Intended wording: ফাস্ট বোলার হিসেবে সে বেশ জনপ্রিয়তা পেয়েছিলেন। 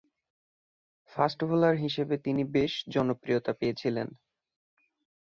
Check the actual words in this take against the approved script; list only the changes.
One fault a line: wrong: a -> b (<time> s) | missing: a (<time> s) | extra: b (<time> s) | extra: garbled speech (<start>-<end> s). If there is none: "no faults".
wrong: সে -> তিনি (2.2 s)